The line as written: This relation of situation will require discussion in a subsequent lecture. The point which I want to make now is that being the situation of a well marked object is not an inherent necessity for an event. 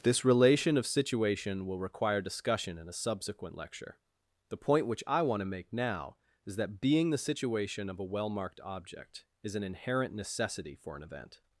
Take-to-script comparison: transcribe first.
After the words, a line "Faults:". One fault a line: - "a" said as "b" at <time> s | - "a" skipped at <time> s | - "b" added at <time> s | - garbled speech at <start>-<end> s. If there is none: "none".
This relation of situation will require discussion in a subsequent lecture. The point which I want to make now is that being the situation of a well marked object is an inherent necessity for an event.
Faults:
- "not" skipped at 9.5 s